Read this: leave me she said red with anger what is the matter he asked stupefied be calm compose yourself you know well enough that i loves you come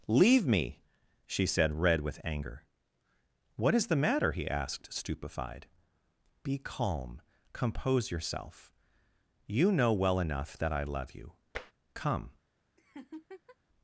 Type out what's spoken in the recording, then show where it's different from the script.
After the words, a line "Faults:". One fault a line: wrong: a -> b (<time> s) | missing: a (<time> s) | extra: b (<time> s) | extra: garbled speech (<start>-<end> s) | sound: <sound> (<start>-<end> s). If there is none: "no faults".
leave me she said red with anger what is the matter he asked stupefied be calm compose yourself you know well enough that i love you come
Faults:
wrong: loves -> love (10.8 s)
sound: tap (11.5-11.7 s)
sound: laugh (12.8-13.6 s)